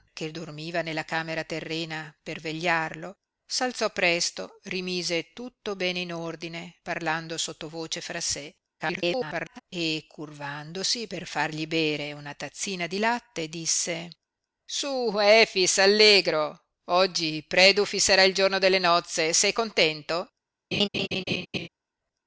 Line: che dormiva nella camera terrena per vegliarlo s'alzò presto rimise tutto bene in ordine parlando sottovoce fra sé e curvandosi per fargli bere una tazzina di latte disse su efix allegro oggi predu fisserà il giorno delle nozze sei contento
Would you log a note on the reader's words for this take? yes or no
yes